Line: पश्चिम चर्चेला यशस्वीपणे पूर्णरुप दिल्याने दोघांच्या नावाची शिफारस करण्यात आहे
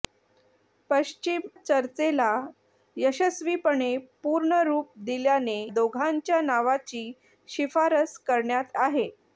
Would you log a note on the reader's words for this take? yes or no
no